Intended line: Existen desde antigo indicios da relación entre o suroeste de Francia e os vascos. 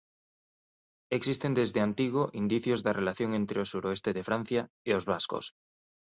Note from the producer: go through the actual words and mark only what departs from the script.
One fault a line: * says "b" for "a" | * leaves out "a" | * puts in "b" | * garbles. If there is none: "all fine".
all fine